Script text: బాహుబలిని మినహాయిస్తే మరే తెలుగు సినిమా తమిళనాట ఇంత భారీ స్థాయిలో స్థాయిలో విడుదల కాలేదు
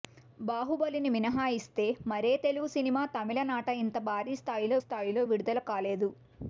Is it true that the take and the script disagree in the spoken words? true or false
false